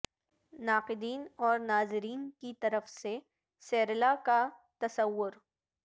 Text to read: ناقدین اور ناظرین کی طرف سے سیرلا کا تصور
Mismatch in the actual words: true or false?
false